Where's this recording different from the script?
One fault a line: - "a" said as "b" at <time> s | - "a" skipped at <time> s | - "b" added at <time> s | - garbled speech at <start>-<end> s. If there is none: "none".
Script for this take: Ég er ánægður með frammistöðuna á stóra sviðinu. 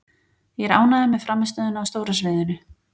none